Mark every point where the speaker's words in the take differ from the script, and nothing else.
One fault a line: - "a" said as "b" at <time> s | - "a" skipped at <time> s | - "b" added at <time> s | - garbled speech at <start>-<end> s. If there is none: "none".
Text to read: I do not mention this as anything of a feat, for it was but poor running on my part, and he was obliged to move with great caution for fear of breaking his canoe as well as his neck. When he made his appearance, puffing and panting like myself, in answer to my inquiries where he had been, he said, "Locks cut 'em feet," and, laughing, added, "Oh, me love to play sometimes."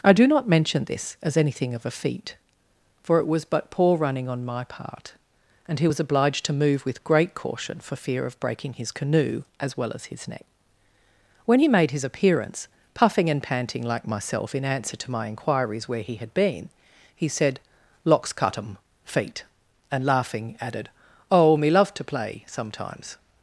none